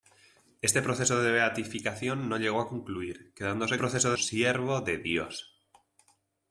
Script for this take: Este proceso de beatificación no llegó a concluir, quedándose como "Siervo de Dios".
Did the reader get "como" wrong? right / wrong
wrong